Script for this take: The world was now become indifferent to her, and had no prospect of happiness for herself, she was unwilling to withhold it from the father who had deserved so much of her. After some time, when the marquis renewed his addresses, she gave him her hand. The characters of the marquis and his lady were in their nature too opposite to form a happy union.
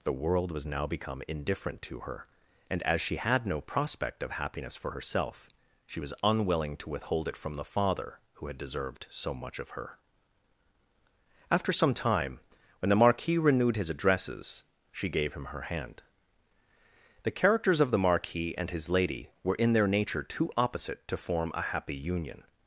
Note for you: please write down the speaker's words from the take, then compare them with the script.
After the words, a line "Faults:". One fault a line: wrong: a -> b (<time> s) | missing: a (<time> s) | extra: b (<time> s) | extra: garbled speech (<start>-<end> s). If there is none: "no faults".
The world was now become indifferent to her, and as she had no prospect of happiness for herself, she was unwilling to withhold it from the father who had deserved so much of her. After some time, when the marquis renewed his addresses, she gave him her hand. The characters of the marquis and his lady were in their nature too opposite to form a happy union.
Faults:
extra: as she (2.8 s)